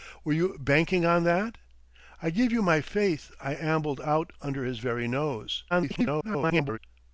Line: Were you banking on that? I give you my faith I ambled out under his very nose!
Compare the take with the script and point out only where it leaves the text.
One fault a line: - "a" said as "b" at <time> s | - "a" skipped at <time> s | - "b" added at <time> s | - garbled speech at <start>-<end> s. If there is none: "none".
- garbled speech at 5.7-6.8 s